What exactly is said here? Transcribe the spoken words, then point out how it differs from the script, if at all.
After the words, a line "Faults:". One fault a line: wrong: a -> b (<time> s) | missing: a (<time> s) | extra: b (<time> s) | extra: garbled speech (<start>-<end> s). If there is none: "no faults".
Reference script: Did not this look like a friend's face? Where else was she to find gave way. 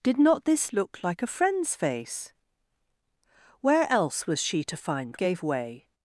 Did not this look like a friend's face? Where else was she to find gave way.
Faults:
no faults